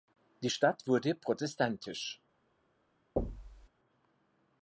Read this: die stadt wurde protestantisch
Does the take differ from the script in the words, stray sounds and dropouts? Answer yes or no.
yes